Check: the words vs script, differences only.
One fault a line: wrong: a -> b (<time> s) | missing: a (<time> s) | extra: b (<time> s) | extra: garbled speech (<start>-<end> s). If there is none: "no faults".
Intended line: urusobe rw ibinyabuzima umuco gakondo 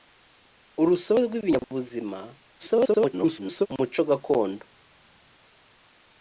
extra: garbled speech (2.6-3.7 s)